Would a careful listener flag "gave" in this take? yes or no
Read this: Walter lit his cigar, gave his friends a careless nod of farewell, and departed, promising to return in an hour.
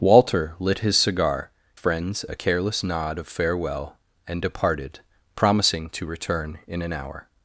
yes